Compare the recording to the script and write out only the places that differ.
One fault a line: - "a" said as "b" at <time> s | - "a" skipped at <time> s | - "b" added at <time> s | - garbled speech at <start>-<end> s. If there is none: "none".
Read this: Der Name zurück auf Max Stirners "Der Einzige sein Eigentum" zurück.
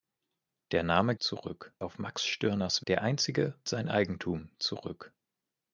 none